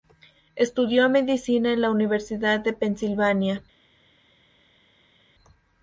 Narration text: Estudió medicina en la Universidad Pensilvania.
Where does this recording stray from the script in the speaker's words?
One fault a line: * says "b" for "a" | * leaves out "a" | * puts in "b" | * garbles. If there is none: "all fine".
* puts in "de"